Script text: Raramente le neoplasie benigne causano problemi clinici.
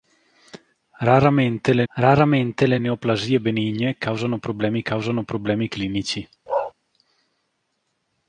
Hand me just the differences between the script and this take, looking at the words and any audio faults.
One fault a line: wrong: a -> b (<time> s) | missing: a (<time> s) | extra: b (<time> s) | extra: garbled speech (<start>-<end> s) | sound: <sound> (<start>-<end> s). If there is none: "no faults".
extra: raramente le (1.9 s)
extra: causano problemi (4.8 s)
sound: bark (6.5-6.7 s)